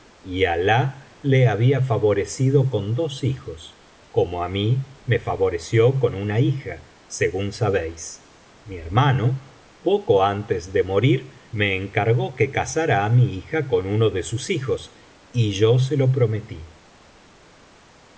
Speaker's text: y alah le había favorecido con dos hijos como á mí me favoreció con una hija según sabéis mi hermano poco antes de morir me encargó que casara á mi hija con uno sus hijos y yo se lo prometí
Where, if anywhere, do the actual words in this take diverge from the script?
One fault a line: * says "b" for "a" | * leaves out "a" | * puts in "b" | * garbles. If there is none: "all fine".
* puts in "de"